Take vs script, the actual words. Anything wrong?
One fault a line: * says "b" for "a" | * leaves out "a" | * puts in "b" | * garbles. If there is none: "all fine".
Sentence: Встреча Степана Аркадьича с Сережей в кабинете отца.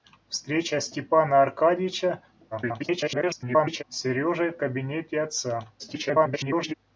* garbles
* garbles